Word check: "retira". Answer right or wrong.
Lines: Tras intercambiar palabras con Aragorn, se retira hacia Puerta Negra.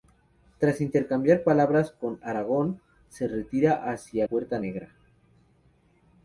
right